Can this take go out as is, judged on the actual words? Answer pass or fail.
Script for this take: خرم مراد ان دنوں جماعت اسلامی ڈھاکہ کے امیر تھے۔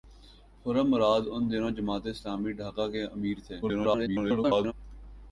fail